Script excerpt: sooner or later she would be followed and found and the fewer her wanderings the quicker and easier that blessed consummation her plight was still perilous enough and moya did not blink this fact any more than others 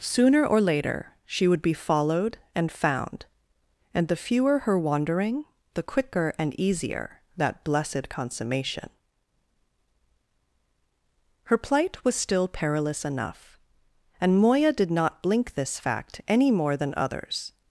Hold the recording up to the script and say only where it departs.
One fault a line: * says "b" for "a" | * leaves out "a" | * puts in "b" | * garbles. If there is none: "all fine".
* says "wandering" for "wanderings"